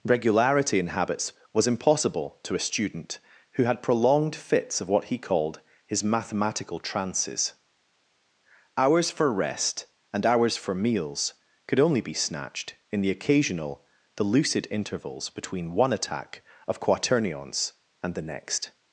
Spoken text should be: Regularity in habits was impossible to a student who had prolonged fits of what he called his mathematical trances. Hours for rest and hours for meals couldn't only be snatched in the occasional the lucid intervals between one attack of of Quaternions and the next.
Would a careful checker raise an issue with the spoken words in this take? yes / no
yes